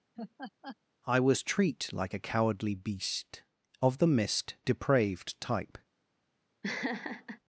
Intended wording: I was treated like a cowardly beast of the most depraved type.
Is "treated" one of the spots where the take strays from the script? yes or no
yes